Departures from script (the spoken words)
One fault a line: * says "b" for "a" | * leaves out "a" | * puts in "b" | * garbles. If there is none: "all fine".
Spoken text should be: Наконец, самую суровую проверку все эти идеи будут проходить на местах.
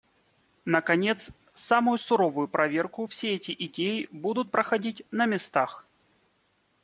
all fine